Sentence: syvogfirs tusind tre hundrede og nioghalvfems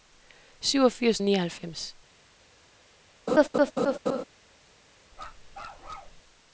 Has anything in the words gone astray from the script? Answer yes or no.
yes